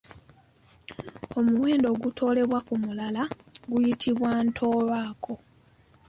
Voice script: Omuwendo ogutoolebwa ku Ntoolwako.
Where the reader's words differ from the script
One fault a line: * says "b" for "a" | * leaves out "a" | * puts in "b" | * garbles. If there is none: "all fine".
* puts in "mulala guyitibwa"